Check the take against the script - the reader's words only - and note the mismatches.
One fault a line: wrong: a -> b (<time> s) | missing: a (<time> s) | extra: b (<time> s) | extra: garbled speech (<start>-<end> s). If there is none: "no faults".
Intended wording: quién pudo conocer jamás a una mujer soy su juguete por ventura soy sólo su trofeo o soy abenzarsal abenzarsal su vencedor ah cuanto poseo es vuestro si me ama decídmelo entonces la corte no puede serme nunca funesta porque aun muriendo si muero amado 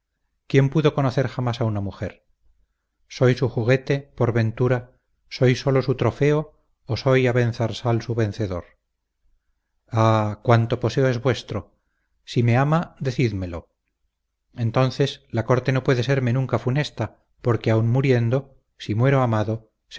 missing: abenzarsal (8.0 s)